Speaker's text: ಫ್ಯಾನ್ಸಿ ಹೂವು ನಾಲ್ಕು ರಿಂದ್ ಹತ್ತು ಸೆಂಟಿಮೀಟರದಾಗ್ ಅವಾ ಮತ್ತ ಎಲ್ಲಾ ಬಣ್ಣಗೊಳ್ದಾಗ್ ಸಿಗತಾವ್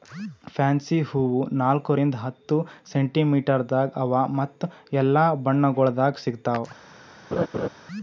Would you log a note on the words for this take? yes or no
no